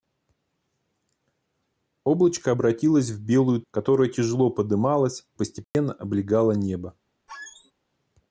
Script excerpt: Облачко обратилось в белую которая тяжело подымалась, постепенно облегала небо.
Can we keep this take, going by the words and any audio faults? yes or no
no